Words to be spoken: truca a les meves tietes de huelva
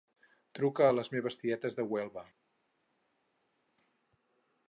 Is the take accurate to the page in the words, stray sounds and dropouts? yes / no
yes